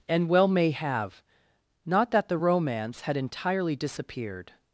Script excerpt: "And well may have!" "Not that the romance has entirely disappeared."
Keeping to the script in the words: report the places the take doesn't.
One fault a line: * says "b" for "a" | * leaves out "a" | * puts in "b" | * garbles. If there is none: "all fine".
* says "had" for "has"